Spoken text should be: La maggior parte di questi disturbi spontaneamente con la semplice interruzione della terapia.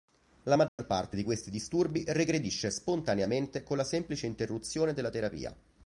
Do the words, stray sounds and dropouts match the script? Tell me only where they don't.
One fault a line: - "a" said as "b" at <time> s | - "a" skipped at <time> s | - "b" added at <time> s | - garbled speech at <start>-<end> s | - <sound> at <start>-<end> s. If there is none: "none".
- dropout at 0.7-0.8 s
- "regredisce" added at 2.1 s